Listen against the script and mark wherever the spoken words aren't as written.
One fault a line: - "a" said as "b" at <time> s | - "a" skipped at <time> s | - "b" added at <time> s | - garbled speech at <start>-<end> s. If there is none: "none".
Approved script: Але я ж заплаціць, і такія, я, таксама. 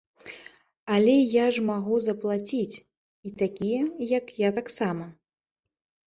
- "магу" added at 1.7 s
- "як" added at 4.1 s